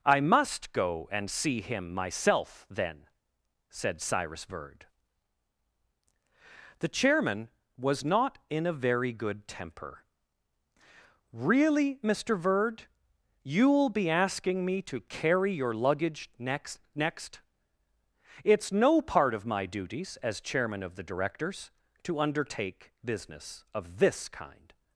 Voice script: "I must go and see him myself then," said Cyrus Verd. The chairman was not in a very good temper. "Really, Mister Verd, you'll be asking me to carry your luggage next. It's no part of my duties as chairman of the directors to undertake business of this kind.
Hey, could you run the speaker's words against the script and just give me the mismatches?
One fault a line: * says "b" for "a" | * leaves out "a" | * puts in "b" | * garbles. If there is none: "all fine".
* puts in "next"